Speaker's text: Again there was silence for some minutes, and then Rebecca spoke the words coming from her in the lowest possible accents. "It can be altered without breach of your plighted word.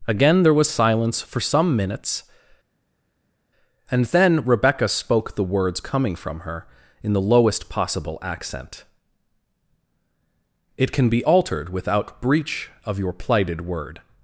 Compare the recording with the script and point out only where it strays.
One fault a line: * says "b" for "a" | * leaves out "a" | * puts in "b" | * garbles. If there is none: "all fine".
* says "accent" for "accents"